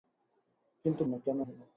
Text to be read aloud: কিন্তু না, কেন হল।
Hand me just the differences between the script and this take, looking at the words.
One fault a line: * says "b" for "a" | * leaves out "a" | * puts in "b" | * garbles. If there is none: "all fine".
all fine